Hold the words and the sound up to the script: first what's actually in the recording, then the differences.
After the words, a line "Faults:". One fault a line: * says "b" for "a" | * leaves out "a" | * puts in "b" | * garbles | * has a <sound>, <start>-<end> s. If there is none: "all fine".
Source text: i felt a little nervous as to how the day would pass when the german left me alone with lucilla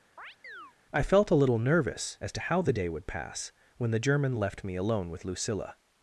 i felt a little nervous as to how the day would pass when the german left me alone with lucilla
Faults:
* has a chirp, 0.2-0.7 s